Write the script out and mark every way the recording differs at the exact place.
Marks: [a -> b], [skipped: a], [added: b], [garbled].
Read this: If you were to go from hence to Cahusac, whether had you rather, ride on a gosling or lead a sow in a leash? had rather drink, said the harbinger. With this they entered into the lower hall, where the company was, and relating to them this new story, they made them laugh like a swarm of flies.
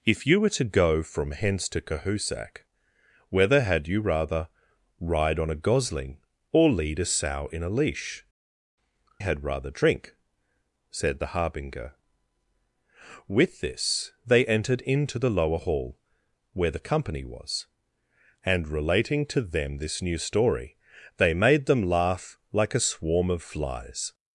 If you were to go from hence to Cahusac, whether had you rather, ride on a gosling or lead a sow in a leash? had rather drink, said the harbinger. With this they entered into the lower hall, where the company was, and relating to them this new story, they made them laugh like a swarm of flies.